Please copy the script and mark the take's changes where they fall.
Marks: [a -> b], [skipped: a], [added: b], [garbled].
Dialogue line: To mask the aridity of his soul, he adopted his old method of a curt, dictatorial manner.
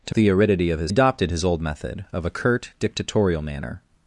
To [skipped: mask] the aridity of his [skipped: soul, he] adopted his old method of a curt, dictatorial manner.